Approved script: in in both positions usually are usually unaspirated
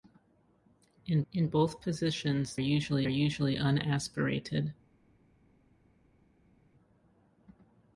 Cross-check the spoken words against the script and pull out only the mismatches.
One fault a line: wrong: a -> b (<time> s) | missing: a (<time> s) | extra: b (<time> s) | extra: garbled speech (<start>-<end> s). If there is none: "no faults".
no faults